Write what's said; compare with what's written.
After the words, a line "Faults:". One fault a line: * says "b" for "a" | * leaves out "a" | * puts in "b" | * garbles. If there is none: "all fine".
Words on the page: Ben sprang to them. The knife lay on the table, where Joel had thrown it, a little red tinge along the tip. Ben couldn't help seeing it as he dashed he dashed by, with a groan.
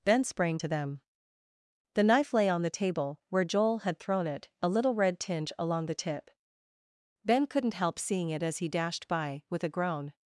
Ben sprang to them. The knife lay on the table, where Joel had thrown it, a little red tinge along the tip. Ben couldn't help seeing it as he dashed by, with a groan.
Faults:
* leaves out "he dashed"